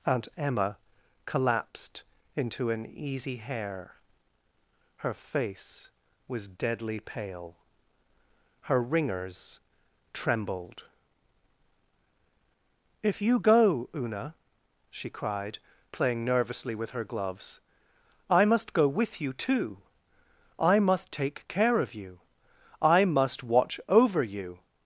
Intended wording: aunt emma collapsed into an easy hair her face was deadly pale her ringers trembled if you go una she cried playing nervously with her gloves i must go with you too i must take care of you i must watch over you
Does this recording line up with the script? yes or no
yes